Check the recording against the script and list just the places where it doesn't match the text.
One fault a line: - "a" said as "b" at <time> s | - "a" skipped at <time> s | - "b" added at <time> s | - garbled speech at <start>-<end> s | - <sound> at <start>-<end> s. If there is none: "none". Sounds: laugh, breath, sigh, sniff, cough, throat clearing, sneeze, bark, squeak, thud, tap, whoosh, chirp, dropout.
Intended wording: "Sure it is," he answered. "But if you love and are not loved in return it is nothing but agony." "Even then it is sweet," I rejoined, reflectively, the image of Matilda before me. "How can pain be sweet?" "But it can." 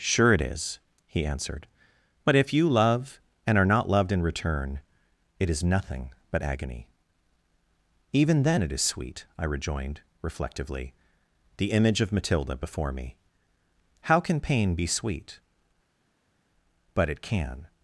none